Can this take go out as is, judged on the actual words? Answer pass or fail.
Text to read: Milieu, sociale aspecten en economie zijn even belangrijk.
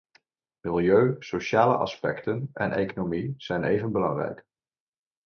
pass